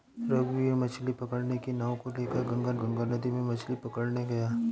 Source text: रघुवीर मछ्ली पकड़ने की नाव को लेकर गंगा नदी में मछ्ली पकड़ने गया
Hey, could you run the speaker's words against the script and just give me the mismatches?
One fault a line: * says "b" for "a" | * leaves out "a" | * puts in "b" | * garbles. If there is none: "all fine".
* puts in "गंगा"